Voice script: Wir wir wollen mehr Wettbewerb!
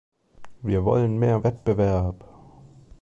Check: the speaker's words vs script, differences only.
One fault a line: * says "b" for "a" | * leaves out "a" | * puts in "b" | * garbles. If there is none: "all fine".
* leaves out "wir"